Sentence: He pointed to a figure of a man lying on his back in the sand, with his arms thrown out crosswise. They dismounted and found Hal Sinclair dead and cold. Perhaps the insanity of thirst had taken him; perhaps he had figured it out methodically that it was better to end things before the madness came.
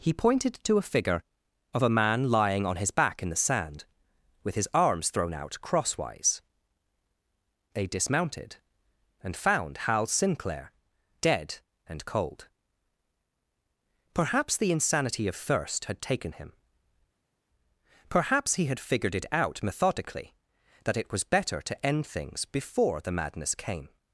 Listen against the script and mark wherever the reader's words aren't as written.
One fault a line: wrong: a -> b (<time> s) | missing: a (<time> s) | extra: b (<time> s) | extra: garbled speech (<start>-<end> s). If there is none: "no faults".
no faults